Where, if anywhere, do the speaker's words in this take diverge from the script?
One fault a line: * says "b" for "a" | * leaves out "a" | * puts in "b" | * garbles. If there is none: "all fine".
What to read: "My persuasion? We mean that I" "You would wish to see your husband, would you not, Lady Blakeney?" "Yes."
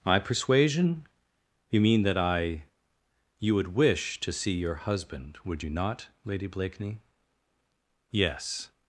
* says "You" for "We"